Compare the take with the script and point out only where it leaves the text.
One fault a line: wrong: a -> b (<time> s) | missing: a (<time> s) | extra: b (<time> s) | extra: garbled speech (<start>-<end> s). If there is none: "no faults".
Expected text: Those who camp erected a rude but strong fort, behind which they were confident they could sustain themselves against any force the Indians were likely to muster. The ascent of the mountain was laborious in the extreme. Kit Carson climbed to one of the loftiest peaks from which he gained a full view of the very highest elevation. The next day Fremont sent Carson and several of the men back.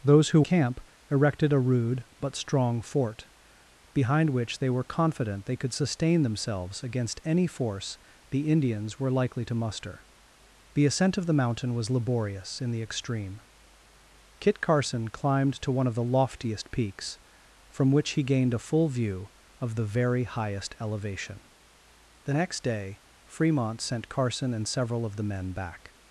no faults